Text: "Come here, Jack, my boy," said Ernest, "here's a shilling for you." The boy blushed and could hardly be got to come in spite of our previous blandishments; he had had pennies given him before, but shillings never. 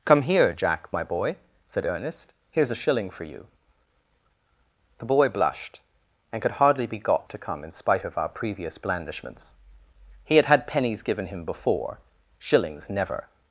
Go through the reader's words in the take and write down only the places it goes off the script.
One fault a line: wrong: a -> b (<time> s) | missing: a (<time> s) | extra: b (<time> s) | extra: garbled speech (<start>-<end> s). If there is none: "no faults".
missing: but (12.0 s)